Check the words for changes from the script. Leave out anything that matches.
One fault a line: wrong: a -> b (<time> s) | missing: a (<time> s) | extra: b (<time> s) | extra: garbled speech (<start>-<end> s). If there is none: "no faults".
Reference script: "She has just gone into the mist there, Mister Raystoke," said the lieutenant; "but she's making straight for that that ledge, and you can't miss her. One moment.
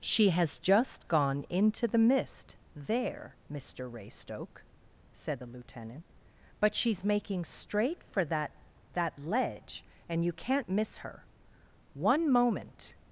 no faults